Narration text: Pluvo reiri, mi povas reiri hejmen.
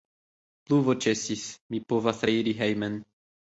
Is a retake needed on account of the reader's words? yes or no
yes